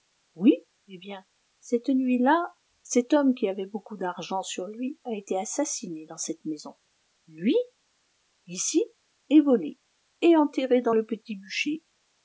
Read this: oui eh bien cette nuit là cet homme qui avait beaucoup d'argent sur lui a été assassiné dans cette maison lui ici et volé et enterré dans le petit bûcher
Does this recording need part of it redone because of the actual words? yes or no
no